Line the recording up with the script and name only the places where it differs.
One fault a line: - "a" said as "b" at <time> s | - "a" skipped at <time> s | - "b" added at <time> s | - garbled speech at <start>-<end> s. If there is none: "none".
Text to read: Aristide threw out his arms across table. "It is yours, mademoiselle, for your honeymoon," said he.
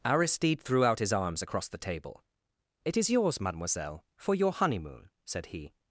- "the" added at 1.7 s